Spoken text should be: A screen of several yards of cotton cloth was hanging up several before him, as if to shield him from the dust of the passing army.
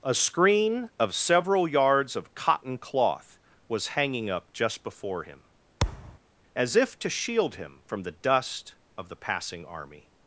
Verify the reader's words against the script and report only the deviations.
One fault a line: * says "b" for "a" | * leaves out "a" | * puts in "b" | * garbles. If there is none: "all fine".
* says "just" for "several"